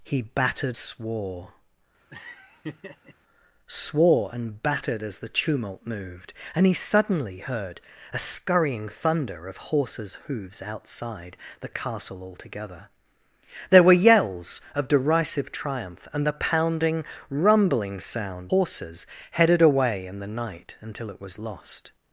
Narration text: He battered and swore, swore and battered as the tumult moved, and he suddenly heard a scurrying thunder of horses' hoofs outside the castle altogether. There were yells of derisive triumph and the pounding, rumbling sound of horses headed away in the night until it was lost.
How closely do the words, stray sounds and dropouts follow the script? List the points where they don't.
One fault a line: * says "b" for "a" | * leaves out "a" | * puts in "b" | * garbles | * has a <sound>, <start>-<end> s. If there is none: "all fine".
* leaves out "and"
* has a laugh, 2.1-3.1 s
* leaves out "of"